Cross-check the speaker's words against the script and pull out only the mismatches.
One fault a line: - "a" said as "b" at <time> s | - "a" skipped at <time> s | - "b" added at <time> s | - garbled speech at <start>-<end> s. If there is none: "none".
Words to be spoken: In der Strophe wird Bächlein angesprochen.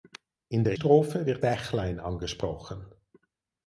none